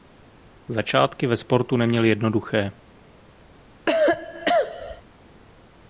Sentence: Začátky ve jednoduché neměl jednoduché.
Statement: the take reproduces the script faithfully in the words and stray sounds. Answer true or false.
false